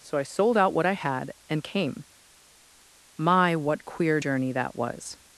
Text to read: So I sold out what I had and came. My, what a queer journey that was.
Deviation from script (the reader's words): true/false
true